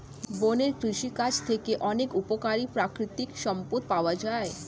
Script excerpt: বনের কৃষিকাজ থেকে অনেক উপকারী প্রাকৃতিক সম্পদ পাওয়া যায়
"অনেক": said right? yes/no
yes